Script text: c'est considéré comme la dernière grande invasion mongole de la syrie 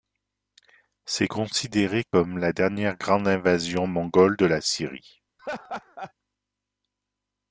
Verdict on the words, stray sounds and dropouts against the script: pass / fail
fail